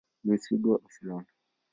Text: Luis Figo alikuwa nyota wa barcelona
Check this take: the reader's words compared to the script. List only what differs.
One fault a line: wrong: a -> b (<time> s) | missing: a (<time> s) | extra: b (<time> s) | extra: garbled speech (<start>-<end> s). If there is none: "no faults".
missing: alikuwa nyota wa (0.8 s)